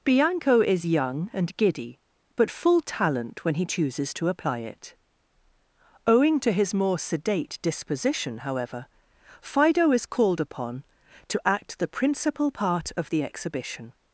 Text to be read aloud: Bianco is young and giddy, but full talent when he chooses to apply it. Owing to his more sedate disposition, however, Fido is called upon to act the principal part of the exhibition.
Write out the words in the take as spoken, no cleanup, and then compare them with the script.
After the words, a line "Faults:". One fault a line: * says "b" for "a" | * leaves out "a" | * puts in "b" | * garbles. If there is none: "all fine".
Bianco is young and giddy, but full talent when he chooses to apply it. Owing to his more sedate disposition, however, Fido is called upon to act the principal part of the exhibition.
Faults:
all fine